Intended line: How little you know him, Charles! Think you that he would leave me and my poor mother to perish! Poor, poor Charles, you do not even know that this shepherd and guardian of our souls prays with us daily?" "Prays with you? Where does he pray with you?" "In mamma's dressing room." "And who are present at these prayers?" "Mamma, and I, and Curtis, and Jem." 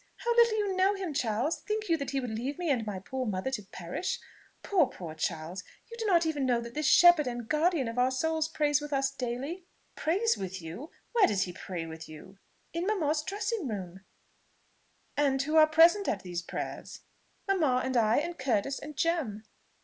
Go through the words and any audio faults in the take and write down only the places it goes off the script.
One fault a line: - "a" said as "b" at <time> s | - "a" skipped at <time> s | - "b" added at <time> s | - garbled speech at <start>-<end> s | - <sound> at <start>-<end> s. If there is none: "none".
none